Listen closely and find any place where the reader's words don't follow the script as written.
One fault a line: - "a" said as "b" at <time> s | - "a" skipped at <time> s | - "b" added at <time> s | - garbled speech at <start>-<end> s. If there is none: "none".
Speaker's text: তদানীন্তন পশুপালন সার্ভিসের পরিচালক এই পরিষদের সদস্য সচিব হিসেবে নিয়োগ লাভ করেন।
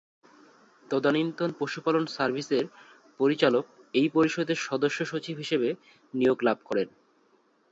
none